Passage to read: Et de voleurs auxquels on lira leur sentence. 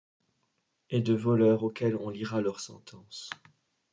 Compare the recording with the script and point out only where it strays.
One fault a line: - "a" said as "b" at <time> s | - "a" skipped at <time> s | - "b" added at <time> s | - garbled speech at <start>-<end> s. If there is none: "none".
none